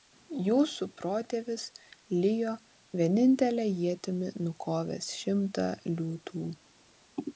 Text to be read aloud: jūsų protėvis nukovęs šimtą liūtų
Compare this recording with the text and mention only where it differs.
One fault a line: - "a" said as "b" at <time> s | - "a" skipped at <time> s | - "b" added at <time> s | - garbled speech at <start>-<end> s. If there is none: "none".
- "lijo vienintele ietimi" added at 2.2 s